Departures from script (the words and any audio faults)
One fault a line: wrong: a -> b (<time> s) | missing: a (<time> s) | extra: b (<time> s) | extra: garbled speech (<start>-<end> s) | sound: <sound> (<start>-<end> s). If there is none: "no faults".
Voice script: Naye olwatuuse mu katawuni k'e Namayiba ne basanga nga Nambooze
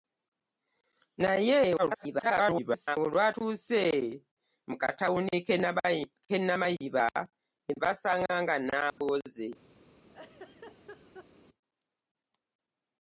extra: garbled speech (1.8-3.0 s)
sound: dropout (8.9-9.0 s)
sound: laugh (10.0-11.3 s)